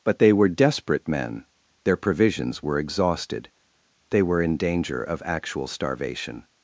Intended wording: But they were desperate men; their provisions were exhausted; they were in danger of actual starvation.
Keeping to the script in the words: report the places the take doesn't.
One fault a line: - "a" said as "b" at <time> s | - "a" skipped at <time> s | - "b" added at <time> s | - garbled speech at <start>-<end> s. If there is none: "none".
none